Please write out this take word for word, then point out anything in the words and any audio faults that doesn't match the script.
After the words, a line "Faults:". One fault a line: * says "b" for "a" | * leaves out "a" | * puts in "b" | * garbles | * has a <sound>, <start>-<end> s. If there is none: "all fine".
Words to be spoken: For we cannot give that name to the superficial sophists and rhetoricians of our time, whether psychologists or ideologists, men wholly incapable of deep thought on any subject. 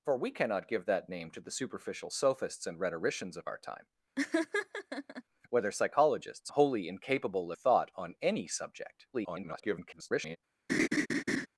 For we cannot give that name to the superficial sophists and rhetoricians of our time, whether psychologists wholly incapable thought on any subject. [garbled]
Faults:
* has a laugh, 4.2-5.2 s
* leaves out "or ideologists men"
* leaves out "of deep"
* garbles
* has a laugh, 10.7-11.5 s